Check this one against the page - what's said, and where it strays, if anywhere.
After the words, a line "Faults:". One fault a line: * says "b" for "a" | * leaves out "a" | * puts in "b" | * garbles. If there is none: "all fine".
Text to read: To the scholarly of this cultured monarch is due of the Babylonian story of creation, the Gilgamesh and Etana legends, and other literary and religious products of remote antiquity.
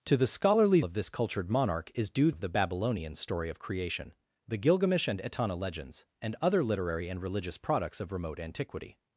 To the scholarly of this cultured monarch is due of the Babylonian story of creation, the Gilgamesh and Etana legends, and other literary and religious products of remote antiquity.
Faults:
all fine